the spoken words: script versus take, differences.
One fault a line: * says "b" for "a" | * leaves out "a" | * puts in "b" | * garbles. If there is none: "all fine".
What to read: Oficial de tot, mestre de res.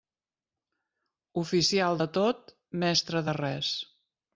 all fine